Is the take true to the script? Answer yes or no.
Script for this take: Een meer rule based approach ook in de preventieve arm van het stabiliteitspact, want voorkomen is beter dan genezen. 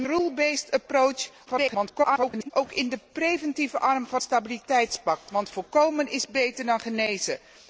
no